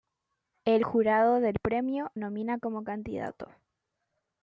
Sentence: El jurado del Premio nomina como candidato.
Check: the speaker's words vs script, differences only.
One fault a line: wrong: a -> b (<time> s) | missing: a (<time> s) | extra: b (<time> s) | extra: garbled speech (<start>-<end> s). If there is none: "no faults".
no faults